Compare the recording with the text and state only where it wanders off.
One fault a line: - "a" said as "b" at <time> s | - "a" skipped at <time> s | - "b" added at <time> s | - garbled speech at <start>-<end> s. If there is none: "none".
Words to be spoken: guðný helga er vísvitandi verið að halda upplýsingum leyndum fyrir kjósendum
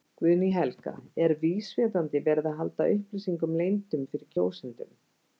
none